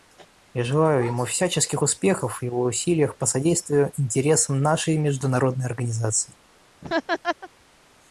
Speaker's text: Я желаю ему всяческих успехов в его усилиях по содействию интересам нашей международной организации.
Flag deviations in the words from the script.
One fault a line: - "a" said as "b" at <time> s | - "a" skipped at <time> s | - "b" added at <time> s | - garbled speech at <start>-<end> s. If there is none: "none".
none